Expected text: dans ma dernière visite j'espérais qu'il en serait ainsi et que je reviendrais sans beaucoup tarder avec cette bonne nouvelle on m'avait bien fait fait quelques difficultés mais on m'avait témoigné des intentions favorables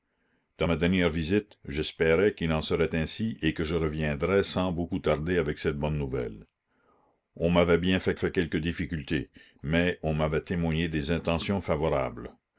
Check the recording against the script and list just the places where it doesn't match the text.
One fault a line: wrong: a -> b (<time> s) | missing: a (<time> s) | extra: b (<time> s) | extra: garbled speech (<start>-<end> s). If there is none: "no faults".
no faults